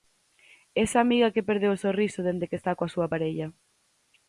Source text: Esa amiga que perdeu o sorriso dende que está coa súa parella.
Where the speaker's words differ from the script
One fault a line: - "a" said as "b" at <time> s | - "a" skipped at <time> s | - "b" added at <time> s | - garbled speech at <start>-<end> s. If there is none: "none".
none